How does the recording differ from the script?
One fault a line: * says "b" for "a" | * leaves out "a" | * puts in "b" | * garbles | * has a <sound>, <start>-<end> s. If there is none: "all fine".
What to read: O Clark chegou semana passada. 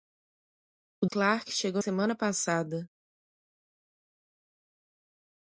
all fine